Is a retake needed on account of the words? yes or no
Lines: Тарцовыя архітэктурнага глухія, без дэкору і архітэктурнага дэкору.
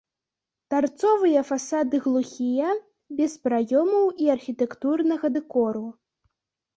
yes